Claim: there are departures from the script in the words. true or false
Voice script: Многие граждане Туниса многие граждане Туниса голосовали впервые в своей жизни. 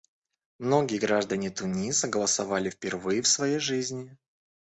true